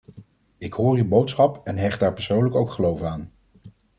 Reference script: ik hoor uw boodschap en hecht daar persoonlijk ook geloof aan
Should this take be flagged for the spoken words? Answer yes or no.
no